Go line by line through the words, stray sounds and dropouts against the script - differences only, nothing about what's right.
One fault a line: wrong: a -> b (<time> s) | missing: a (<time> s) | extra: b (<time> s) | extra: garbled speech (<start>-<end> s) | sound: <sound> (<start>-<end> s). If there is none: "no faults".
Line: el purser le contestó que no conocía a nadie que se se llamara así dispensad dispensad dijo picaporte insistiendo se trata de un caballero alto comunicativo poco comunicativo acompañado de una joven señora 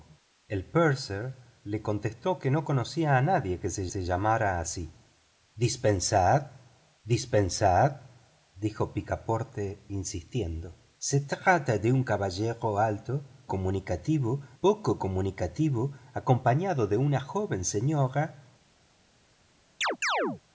sound: chirp (19.8-20.4 s)